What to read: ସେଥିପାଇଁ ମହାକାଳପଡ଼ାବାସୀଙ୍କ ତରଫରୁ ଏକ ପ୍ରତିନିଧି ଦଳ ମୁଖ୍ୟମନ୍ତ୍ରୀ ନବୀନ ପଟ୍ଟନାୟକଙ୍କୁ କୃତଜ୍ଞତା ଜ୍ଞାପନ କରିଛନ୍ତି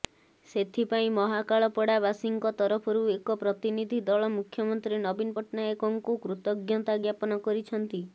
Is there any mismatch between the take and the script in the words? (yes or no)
no